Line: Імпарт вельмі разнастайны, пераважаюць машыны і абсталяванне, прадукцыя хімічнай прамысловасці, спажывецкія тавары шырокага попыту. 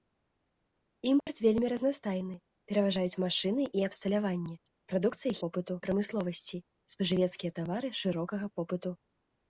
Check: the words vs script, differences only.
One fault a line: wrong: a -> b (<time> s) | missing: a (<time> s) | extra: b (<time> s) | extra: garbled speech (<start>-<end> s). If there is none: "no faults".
wrong: хімічнай -> попыту (5.5 s)